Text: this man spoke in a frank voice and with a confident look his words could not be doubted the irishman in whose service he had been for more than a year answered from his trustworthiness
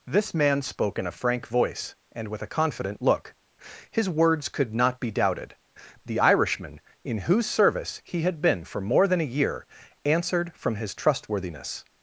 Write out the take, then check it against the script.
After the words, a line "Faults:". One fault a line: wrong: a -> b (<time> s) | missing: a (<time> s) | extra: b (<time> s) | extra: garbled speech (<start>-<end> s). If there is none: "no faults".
this man spoke in a frank voice and with a confident look his words could not be doubted the irishman in whose service he had been for more than a year answered from his trustworthiness
Faults:
no faults